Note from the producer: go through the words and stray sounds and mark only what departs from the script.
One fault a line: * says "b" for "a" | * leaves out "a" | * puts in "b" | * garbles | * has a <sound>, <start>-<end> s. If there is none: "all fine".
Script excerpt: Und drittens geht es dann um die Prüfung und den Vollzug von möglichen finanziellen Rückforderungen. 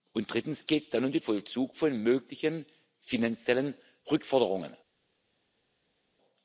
* leaves out "Prüfung und den"